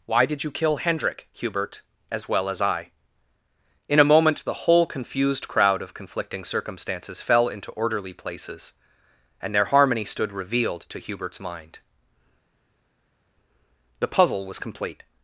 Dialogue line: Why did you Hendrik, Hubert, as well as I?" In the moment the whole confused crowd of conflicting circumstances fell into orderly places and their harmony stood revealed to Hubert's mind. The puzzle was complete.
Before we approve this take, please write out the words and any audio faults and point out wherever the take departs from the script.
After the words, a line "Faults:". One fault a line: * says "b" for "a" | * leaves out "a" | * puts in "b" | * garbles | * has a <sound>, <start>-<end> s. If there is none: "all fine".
Why did you kill Hendrik, Hubert, as well as I?" In a moment the whole confused crowd of conflicting circumstances fell into orderly places and their harmony stood revealed to Hubert's mind. The puzzle was complete.
Faults:
* puts in "kill"
* says "a" for "the"